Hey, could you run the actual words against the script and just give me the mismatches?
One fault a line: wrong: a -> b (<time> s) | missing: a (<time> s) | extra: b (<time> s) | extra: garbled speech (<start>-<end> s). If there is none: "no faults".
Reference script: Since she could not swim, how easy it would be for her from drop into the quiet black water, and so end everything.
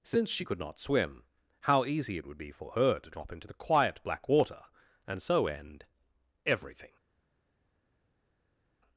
wrong: from -> to (3.0 s)